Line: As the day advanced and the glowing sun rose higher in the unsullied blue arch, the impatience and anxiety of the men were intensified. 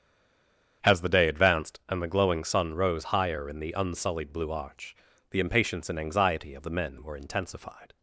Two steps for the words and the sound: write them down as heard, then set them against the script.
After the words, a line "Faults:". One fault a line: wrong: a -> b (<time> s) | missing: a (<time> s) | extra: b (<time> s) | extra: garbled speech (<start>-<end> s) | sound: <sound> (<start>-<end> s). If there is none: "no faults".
As the day advanced and the glowing sun rose higher in the unsullied blue arch, the impatience and anxiety of the men were intensified.
Faults:
no faults